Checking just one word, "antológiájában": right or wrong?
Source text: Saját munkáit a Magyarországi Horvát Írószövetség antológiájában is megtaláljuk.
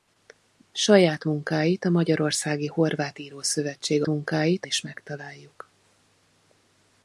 wrong